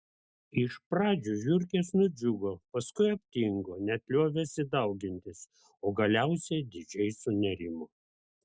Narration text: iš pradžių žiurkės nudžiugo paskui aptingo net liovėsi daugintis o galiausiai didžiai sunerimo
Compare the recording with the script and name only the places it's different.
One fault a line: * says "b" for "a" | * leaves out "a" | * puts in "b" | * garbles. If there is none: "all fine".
all fine